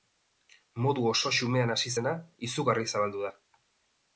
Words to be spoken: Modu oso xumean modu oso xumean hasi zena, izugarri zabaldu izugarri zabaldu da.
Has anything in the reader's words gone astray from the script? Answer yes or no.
yes